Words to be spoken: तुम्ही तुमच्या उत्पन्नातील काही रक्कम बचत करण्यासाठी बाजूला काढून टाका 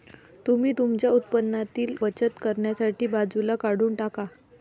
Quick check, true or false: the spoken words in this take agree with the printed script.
false